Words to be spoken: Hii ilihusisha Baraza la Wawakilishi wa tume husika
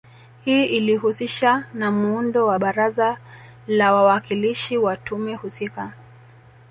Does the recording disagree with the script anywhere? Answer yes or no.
yes